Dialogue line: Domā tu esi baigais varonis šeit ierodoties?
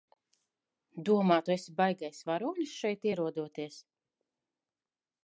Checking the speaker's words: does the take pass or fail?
pass